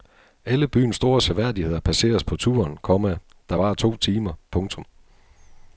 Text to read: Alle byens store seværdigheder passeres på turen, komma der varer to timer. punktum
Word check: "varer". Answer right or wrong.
right